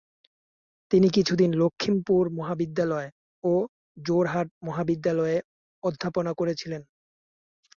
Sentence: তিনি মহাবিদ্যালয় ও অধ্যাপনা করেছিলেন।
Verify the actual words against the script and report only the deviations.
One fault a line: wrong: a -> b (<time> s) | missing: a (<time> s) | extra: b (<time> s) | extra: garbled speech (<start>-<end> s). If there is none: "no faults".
extra: কিছুদিন লখিমপুর (1.1 s)
extra: যোরহাট মহাবিদ্যালয়ে (4.0 s)